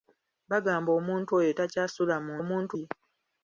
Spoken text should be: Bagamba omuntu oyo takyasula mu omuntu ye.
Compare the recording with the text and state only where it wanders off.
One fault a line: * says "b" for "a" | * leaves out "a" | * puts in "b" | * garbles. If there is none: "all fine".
all fine